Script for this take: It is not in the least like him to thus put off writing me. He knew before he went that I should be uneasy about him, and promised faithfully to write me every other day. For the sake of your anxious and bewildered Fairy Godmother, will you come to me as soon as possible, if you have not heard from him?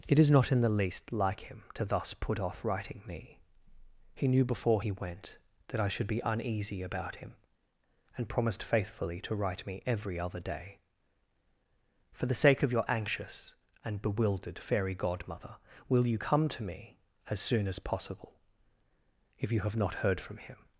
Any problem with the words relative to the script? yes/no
no